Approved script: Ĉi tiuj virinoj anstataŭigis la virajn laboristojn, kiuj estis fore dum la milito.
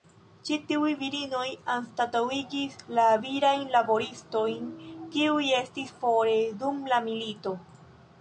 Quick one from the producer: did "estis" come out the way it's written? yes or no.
yes